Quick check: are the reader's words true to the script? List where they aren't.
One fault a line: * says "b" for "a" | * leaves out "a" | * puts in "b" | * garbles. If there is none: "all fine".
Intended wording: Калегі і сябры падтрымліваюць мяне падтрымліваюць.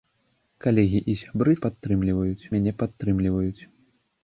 all fine